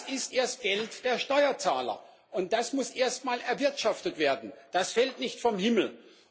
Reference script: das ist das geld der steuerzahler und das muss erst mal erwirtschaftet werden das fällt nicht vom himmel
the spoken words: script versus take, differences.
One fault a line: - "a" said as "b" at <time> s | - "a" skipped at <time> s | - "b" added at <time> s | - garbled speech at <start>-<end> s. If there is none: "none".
- "das" said as "erst" at 0.3 s